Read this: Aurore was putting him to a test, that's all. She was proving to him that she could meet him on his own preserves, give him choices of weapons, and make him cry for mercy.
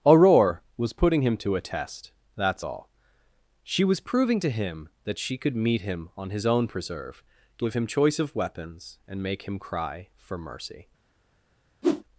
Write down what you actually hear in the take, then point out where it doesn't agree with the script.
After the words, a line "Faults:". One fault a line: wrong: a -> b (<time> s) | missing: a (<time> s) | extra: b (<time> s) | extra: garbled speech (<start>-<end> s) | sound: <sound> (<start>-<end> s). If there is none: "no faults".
Aurore was putting him to a test, that's all. She was proving to him that she could meet him on his own preserve, give him choice of weapons, and make him cry for mercy.
Faults:
wrong: preserves -> preserve (6.7 s)
wrong: choices -> choice (7.8 s)
sound: whoosh (11.8-12.0 s)